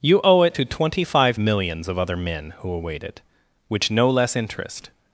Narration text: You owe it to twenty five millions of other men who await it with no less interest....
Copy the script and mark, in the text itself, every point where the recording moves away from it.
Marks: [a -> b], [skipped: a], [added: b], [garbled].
You owe it to twenty five millions of other men who await it [with -> which] no less interest....